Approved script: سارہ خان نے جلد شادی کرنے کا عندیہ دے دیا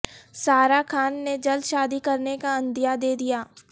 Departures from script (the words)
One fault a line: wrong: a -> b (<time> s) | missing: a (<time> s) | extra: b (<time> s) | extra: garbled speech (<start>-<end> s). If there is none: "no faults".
no faults